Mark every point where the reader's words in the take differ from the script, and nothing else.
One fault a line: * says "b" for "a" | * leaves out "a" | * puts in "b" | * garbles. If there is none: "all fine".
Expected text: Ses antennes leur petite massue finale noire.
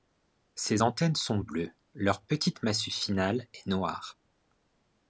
* puts in "sont bleues"
* puts in "est"